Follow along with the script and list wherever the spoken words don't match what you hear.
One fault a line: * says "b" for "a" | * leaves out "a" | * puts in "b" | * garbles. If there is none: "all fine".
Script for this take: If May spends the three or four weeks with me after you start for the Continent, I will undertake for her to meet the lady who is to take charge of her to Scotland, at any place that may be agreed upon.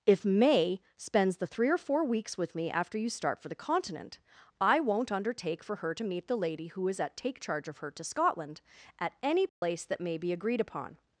* says "won't" for "will"
* says "at" for "to"